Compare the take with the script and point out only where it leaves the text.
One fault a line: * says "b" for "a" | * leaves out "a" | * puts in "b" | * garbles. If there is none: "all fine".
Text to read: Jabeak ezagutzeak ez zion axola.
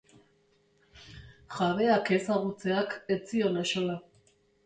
all fine